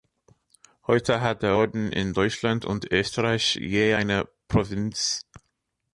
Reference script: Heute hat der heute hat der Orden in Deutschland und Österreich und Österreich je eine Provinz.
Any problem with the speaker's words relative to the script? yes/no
yes